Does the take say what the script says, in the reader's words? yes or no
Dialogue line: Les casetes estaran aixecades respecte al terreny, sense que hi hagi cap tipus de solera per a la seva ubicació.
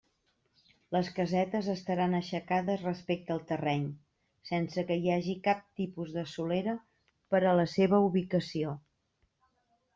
yes